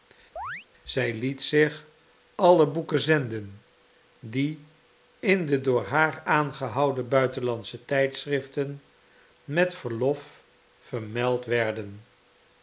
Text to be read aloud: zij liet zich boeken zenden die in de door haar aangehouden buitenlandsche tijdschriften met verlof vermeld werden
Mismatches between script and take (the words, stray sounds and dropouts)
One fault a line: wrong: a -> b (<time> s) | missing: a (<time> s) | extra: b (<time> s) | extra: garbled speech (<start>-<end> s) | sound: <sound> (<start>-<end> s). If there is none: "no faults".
sound: chirp (0.4-0.7 s)
extra: alle (2.3 s)